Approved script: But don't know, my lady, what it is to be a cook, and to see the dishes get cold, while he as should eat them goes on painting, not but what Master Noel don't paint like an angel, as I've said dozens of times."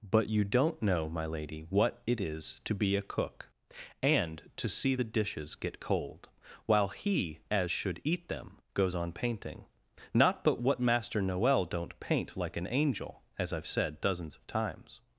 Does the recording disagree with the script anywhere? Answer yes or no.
yes